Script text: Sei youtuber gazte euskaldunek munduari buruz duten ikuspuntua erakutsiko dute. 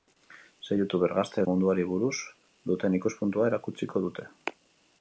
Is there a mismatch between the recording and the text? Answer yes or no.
yes